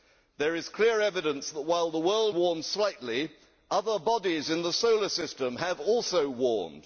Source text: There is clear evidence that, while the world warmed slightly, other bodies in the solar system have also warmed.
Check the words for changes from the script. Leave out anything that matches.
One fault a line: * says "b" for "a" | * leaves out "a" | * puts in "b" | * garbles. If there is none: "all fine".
all fine